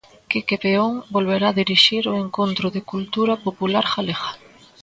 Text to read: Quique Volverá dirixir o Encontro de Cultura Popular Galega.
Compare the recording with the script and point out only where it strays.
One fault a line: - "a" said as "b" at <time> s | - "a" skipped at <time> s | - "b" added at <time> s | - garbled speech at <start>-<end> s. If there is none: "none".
- "Peón" added at 0.6 s